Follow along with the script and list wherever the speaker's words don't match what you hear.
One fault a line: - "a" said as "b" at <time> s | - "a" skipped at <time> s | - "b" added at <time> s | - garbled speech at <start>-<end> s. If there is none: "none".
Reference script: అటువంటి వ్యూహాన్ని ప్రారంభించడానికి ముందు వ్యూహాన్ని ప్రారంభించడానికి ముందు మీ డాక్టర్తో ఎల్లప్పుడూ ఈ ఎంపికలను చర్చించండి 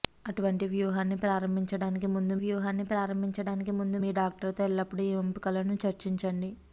none